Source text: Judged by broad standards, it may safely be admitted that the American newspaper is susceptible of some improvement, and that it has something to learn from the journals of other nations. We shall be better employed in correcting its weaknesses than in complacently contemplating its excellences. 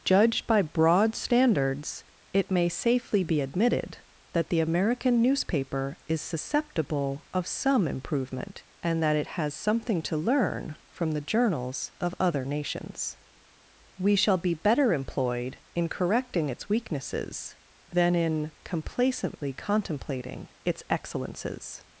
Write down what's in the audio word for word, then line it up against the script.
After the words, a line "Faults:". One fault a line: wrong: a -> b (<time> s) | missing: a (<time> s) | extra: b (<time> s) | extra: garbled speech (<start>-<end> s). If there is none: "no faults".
Judged by broad standards, it may safely be admitted that the American newspaper is susceptible of some improvement, and that it has something to learn from the journals of other nations. We shall be better employed in correcting its weaknesses than in complacently contemplating its excellences.
Faults:
no faults